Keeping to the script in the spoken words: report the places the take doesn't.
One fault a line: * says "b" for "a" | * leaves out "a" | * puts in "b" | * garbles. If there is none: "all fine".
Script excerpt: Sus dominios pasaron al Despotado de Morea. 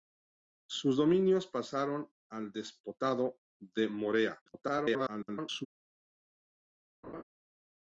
* garbles